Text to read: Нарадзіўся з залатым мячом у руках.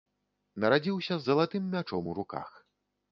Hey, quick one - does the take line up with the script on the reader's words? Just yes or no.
yes